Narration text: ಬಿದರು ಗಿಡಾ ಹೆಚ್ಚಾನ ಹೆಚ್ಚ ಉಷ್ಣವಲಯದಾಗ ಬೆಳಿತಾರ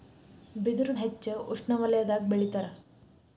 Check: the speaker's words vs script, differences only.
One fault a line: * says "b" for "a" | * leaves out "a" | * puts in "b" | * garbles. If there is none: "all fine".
* leaves out "ಗಿಡಾ ಹೆಚ್ಚಾನ"